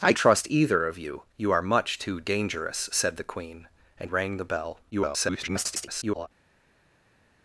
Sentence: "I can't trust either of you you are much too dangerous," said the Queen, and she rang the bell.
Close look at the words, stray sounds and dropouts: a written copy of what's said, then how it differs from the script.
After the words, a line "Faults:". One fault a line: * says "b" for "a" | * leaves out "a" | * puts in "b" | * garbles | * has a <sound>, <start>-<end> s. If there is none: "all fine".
"I trust either of you you are much too dangerous," said the Queen, and rang the bell. [garbled]
Faults:
* leaves out "can't"
* leaves out "she"
* garbles